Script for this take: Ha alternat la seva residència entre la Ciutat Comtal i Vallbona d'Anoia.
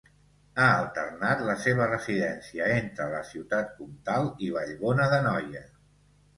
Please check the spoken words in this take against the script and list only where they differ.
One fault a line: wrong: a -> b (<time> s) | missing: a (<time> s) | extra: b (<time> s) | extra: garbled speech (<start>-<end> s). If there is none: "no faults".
no faults